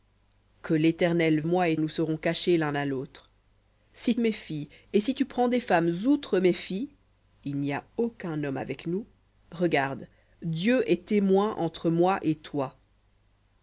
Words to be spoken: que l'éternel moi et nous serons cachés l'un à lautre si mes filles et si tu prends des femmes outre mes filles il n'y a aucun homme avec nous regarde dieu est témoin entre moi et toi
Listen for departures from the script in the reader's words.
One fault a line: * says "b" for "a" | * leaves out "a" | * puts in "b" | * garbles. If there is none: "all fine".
all fine